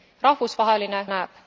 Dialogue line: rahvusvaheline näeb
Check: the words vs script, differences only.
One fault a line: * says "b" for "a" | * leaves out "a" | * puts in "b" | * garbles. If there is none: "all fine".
all fine